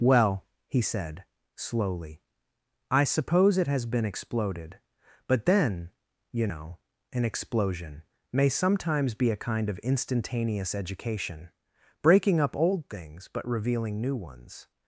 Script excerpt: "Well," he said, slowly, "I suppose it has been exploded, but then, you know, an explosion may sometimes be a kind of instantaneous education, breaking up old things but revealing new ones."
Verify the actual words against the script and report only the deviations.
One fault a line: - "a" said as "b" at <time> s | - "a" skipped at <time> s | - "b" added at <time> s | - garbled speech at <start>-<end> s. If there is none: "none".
none